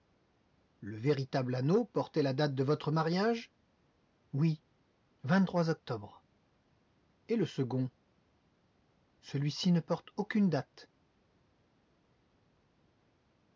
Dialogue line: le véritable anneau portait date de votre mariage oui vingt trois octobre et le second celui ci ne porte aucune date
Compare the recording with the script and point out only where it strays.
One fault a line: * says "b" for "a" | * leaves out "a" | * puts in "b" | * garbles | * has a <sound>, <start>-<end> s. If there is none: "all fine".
* puts in "la"